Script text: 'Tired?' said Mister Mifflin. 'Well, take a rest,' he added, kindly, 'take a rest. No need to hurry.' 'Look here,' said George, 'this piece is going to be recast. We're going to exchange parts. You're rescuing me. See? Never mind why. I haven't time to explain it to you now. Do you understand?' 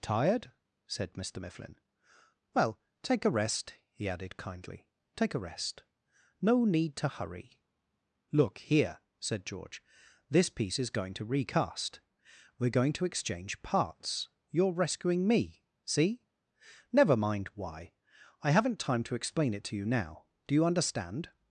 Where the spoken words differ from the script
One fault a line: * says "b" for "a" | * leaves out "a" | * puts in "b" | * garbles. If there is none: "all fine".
* leaves out "be"